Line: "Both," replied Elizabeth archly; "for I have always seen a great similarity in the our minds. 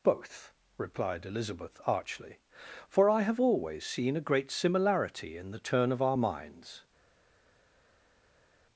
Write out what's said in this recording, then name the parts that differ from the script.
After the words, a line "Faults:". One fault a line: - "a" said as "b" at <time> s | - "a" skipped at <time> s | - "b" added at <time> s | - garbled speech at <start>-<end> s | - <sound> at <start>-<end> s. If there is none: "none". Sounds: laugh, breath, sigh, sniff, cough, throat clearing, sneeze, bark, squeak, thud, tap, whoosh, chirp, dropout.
"Both," replied Elizabeth archly; "for I have always seen a great similarity in the turn of our minds.
Faults:
- "turn of" added at 5.6 s